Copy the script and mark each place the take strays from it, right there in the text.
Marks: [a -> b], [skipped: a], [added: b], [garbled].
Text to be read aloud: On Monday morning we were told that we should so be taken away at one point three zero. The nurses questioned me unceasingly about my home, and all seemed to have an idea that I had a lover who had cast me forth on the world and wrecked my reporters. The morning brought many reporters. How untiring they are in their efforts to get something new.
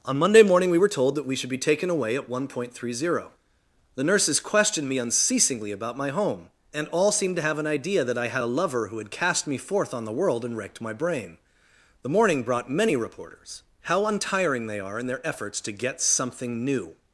On Monday morning we were told that we should [skipped: so] be taken away at one point three zero. The nurses questioned me unceasingly about my home, and all seemed to have an idea that I had a lover who had cast me forth on the world and wrecked my [reporters. -> brain] The morning brought many reporters. How untiring they are in their efforts to get something new.